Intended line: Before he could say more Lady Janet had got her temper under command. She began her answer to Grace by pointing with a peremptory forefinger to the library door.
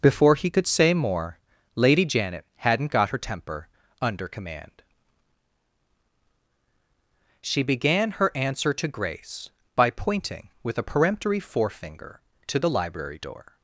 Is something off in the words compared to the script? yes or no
yes